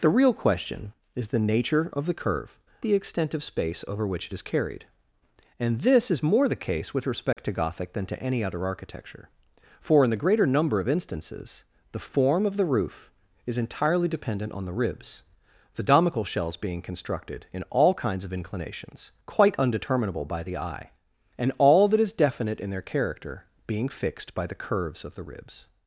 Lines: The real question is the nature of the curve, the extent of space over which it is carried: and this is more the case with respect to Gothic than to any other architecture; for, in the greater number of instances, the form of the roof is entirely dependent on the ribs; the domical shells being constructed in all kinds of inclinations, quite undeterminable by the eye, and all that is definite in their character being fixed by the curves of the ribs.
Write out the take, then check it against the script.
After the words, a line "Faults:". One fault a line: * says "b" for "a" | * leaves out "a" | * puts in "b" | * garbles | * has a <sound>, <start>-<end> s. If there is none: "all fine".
The real question is the nature of the curve, the extent of space over which it is carried: and this is more the case with respect to Gothic than to any other architecture; for, in the greater number of instances, the form of the roof is entirely dependent on the ribs; the domical shells being constructed in all kinds of inclinations, quite undeterminable by the eye, and all that is definite in their character being fixed by the curves of the ribs.
Faults:
* has a dropout, 7.3-7.4 s